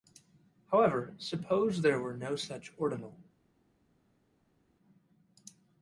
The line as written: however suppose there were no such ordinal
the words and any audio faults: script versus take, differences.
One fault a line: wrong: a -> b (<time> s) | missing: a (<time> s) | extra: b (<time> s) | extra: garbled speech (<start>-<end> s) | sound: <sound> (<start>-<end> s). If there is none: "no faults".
no faults